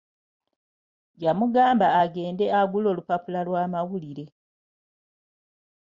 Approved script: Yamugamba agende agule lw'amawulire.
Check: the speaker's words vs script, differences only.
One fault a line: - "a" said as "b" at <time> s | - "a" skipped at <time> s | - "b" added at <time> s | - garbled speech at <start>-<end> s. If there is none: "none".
- "olupapula" added at 2.9 s